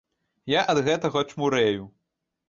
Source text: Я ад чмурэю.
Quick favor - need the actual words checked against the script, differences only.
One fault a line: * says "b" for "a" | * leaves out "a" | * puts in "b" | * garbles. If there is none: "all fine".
* puts in "гэтага"